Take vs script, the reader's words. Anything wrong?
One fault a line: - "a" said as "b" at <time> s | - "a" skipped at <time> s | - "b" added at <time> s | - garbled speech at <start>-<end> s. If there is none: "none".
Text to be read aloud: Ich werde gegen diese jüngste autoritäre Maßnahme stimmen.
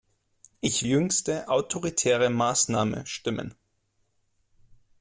- "werde gegen diese" skipped at 0.9 s